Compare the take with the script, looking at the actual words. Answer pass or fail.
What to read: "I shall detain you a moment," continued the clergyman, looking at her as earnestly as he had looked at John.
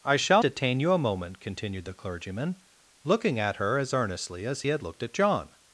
pass